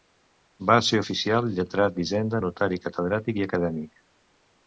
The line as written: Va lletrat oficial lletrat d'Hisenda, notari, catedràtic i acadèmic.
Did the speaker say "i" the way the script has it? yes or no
yes